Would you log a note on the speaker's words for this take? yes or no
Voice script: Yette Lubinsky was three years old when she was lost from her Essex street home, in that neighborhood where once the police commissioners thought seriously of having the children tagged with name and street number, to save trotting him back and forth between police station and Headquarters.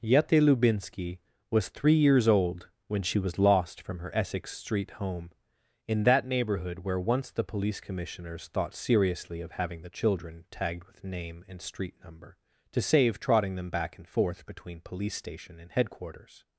yes